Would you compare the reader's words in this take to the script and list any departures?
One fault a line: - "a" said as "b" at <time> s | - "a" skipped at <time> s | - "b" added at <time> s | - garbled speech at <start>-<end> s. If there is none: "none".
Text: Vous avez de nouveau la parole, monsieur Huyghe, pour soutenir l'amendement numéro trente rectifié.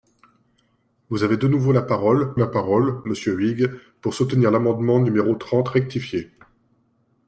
- "la parole" added at 2.4 s